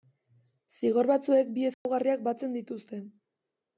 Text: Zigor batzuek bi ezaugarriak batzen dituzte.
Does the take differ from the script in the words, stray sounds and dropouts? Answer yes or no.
yes